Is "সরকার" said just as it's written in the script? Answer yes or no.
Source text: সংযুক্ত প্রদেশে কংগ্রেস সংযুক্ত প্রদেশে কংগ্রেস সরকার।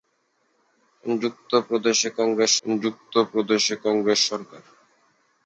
yes